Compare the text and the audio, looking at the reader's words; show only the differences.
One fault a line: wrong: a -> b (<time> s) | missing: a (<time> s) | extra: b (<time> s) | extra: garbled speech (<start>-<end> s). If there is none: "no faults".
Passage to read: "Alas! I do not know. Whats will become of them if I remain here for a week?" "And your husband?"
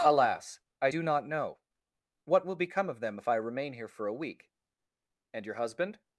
wrong: Whats -> What (2.2 s)